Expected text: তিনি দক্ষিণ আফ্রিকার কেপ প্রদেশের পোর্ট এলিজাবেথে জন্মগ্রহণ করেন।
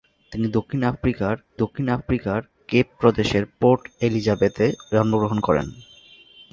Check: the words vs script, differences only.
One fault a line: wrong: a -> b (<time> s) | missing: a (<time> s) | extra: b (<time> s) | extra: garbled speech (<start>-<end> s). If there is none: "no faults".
extra: দক্ষিণ আফ্রিকার (1.6 s)